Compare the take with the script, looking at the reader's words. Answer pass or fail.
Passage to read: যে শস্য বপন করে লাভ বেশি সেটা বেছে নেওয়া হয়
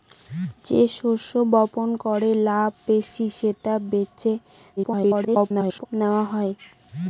fail